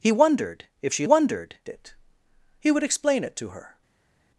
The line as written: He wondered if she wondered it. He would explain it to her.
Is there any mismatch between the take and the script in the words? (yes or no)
no